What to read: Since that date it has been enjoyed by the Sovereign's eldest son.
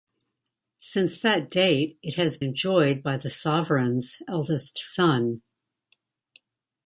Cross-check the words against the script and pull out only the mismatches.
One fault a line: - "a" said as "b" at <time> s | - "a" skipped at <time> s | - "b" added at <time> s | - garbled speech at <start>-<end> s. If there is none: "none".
- "been" skipped at 2.4 s